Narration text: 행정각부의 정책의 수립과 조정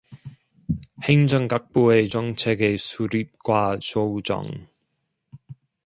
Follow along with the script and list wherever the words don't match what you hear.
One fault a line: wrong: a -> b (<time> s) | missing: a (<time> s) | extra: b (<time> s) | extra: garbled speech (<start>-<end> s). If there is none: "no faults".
no faults